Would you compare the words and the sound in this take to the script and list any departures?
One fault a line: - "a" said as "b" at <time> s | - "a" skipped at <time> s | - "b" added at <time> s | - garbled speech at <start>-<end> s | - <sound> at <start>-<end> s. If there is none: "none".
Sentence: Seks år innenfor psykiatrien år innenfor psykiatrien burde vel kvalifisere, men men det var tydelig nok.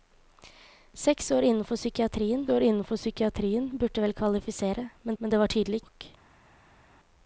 none